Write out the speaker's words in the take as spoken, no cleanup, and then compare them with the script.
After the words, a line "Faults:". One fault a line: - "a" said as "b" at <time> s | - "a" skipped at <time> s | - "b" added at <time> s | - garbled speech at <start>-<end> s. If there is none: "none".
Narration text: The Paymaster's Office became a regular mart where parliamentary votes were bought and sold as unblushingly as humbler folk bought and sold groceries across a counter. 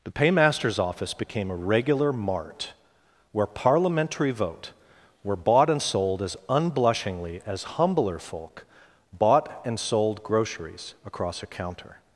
The Paymaster's Office became a regular mart where parliamentary vote were bought and sold as unblushingly as humbler folk bought and sold groceries across a counter.
Faults:
- "votes" said as "vote" at 4.3 s